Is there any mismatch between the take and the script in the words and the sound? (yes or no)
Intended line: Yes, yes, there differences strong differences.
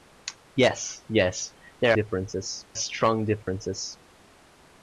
yes